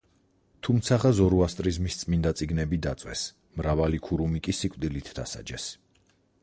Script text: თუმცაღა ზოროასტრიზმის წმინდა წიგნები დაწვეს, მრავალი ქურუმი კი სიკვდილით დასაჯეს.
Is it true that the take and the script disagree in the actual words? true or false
false